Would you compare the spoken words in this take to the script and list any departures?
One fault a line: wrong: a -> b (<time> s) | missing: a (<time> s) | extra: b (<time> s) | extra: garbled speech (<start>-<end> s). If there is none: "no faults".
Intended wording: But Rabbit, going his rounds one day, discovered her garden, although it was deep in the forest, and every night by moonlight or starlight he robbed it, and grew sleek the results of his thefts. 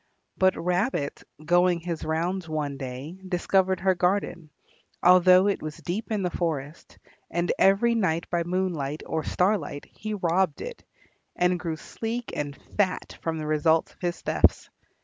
extra: and fat from (12.3 s)